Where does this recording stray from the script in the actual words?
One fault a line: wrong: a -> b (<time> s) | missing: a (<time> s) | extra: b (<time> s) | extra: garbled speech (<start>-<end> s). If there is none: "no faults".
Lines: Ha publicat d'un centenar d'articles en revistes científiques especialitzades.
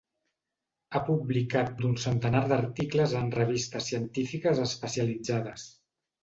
no faults